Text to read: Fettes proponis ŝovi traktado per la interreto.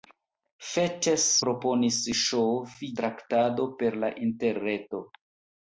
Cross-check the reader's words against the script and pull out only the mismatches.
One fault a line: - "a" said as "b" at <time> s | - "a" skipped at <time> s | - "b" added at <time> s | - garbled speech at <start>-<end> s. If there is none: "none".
none